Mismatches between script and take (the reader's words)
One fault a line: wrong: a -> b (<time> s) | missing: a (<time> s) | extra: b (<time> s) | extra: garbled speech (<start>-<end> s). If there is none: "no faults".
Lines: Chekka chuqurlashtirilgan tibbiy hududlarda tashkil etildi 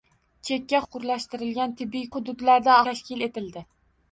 no faults